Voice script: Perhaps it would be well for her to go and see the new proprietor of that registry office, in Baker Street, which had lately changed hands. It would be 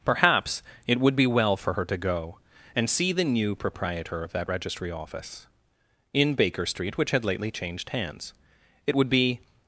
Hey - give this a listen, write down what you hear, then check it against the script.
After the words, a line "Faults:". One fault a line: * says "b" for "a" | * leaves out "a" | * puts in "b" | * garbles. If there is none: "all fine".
Perhaps it would be well for her to go and see the new proprietor of that registry office, in Baker Street, which had lately changed hands. It would be
Faults:
all fine